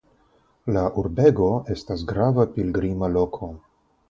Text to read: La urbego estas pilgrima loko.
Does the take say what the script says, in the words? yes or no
no